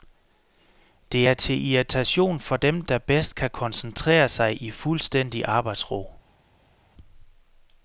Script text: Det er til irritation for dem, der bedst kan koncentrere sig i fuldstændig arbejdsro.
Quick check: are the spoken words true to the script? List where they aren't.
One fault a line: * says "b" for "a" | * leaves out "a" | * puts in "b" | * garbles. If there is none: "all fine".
all fine